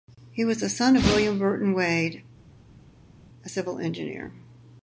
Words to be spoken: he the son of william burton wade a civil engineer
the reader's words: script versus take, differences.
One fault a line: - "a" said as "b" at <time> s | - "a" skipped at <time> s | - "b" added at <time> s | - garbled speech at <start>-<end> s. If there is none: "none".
- "was" added at 0.4 s